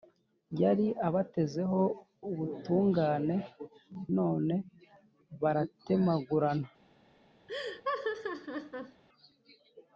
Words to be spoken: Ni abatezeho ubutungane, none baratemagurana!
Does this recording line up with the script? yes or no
no